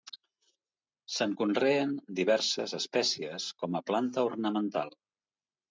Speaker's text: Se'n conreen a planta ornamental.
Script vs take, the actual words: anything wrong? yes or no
yes